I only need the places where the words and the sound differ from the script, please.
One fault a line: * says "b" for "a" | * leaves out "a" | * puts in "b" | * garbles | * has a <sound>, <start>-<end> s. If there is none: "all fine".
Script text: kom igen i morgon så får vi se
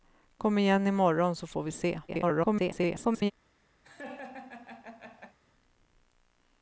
* garbles
* has a laugh, 3.8-5.4 s